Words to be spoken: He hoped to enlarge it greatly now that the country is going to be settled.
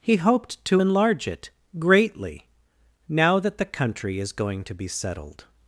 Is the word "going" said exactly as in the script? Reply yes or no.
yes